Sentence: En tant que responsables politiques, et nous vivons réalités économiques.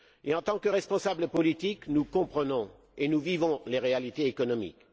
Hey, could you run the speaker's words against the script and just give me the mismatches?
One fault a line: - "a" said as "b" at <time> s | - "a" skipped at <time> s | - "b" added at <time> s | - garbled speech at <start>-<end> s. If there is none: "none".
- "nous comprenons" added at 1.9 s
- "les" added at 3.7 s